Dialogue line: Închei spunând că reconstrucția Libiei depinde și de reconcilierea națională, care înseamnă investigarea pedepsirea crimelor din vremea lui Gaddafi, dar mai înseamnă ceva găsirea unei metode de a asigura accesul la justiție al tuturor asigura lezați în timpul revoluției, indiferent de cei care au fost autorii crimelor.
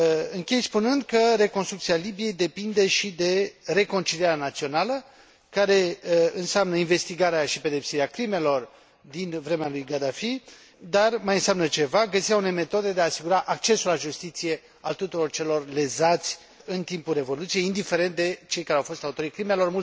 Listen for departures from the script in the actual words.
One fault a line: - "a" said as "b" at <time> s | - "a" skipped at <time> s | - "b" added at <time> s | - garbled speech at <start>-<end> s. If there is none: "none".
- "și" added at 7.5 s
- "asigura" said as "celor" at 15.3 s